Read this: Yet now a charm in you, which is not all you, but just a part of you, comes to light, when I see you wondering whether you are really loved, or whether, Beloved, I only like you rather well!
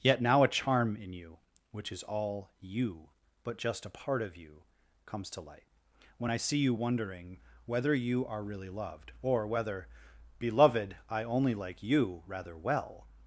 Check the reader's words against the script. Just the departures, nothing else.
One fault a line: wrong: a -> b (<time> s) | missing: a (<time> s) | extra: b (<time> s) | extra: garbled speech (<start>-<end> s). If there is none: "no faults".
missing: not (2.0 s)